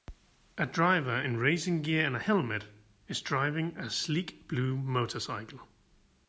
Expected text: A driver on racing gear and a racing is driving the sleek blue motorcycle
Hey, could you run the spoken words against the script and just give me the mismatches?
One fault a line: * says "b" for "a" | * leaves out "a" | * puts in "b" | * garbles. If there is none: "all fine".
* says "in" for "on"
* says "helmet" for "racing"
* says "a" for "the"